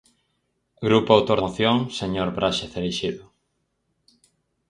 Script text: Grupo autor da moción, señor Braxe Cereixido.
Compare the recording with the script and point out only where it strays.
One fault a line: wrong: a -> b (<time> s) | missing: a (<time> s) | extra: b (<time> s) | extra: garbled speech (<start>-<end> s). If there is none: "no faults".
missing: da (1.4 s)